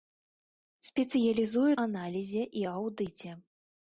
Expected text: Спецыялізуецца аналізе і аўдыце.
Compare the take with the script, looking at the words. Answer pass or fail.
pass